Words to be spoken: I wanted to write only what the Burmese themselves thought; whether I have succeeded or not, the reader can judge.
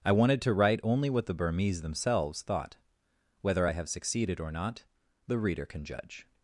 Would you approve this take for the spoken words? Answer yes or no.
yes